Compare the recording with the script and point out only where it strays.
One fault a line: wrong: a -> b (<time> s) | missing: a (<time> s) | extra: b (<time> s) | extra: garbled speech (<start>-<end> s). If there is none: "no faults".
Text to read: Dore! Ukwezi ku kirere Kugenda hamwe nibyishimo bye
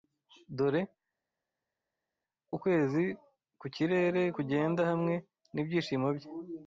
no faults